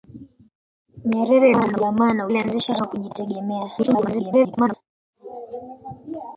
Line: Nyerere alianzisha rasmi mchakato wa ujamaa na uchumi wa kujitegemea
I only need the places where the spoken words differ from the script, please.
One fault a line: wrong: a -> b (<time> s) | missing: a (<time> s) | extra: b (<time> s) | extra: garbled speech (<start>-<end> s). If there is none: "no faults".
missing: alianzisha rasmi mchakato (1.5 s)
wrong: uchumi -> alianzisha (2.3 s)
extra: garbled speech (3.8-4.7 s)